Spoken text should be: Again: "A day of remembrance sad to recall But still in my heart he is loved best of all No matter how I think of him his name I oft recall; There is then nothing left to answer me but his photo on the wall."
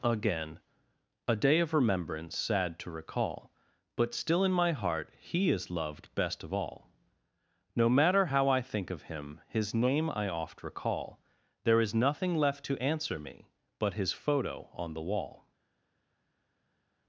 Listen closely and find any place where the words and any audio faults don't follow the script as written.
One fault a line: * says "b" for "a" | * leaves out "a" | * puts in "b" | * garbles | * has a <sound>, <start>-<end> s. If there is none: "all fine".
* leaves out "then"